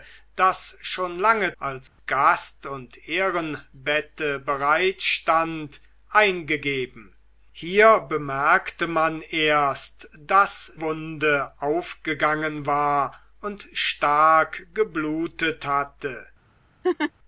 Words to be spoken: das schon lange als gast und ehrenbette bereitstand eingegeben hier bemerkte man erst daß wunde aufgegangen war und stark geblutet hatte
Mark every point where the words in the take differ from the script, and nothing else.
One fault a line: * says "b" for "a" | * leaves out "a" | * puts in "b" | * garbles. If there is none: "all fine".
all fine